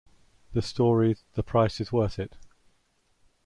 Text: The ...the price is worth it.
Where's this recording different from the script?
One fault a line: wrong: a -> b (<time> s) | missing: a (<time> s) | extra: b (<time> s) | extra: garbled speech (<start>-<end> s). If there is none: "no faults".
extra: story (0.6 s)